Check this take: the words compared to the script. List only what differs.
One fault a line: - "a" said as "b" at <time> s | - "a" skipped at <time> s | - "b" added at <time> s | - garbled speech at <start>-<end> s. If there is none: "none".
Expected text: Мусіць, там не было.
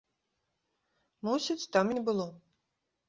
none